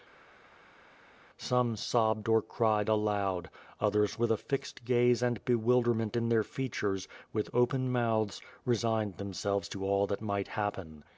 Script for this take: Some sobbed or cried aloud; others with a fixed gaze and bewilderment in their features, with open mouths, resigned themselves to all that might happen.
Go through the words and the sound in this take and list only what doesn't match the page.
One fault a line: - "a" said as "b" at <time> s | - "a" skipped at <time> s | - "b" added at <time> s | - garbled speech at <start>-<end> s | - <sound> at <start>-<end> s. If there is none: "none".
none